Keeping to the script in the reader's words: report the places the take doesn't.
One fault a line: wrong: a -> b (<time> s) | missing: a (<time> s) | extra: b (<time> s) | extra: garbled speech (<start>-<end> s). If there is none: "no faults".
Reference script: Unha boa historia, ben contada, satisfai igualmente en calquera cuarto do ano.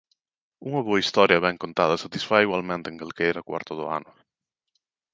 no faults